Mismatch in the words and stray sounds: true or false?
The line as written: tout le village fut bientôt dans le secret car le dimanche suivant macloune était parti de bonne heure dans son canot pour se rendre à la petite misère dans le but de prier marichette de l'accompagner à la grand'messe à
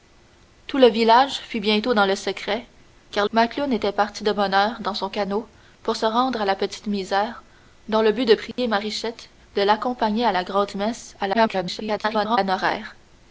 true